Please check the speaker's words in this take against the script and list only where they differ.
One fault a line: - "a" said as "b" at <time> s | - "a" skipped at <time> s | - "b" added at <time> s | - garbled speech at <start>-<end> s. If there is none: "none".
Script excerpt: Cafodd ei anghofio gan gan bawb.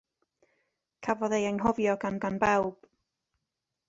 none